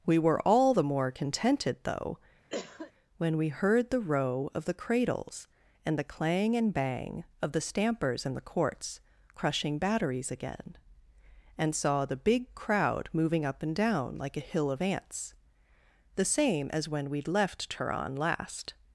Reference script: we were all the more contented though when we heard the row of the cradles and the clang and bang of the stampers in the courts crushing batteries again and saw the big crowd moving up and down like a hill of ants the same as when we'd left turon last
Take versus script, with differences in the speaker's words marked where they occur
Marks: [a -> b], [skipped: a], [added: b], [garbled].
we were all the more contented though when we heard the row of the cradles and the clang and bang of the stampers in the courts crushing batteries again and saw the big crowd moving up and down like a hill of ants the same as when we'd left turon last